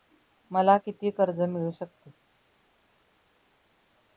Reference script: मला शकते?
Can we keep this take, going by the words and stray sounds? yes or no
no